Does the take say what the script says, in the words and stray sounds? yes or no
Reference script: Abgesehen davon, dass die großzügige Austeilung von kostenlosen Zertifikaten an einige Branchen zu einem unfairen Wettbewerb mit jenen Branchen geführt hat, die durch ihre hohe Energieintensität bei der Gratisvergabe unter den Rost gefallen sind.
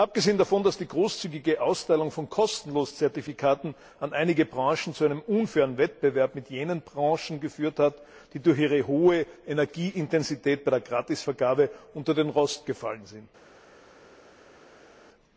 yes